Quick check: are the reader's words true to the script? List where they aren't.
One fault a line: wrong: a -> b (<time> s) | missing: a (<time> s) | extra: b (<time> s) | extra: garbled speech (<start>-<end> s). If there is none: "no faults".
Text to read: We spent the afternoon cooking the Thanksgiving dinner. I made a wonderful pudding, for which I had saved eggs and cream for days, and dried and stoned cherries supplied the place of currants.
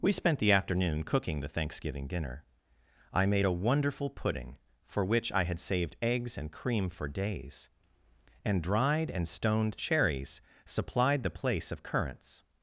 no faults